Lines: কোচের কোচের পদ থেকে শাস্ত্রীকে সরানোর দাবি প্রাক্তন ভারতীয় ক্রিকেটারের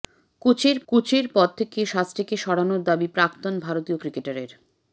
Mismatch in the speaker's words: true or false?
false